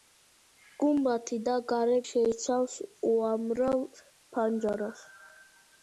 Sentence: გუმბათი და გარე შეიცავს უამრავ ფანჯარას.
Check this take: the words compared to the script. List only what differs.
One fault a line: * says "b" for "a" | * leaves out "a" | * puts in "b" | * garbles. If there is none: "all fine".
all fine